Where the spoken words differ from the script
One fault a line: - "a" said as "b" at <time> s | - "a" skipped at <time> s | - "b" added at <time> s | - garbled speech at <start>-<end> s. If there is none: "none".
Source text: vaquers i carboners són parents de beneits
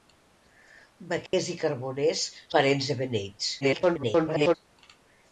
- "són" skipped at 2.2 s
- garbled speech at 3.6-4.5 s